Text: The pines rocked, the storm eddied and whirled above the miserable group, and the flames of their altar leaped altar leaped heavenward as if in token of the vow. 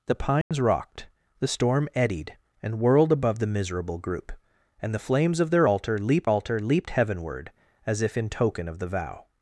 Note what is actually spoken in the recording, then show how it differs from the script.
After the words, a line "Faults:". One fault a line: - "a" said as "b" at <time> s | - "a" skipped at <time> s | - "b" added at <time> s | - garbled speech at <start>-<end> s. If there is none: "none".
The pines rocked, the storm eddied and whirled above the miserable group, and the flames of their altar leaped altar leaped heavenward as if in token of the vow.
Faults:
none